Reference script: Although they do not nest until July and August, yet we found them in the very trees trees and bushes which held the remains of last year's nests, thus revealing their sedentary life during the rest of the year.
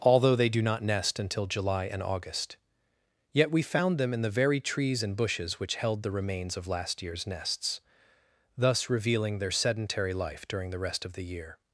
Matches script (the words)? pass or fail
fail